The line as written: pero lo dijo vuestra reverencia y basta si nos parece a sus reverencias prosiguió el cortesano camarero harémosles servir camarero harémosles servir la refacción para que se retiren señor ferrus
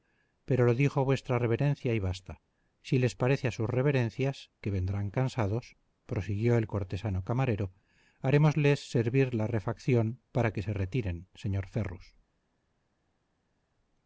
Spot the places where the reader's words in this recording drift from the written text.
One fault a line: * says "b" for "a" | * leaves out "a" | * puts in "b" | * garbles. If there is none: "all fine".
* says "les" for "nos"
* puts in "que vendrán cansados"
* leaves out "camarero harémosles servir"